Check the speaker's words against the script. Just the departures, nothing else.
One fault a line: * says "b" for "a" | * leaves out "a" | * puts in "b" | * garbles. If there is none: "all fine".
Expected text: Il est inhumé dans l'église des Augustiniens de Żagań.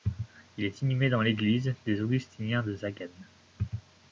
all fine